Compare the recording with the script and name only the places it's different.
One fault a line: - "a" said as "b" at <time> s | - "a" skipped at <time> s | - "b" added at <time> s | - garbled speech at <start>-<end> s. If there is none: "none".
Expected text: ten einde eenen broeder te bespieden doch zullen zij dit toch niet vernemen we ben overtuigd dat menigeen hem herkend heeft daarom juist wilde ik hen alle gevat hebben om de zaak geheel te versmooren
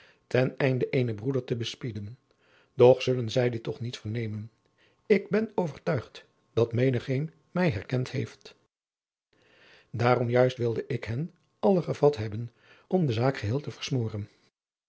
- "we" said as "ik" at 5.0 s
- "hem" said as "mij" at 7.5 s